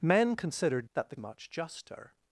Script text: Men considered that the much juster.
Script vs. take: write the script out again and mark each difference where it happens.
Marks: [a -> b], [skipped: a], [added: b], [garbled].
Men considered that the much juster.